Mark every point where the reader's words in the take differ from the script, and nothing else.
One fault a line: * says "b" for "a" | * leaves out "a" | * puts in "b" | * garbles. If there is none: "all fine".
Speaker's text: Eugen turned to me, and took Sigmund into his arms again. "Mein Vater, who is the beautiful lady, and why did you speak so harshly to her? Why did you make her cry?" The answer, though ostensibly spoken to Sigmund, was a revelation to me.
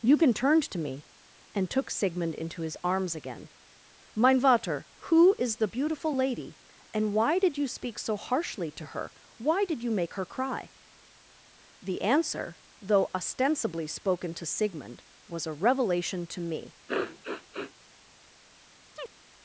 all fine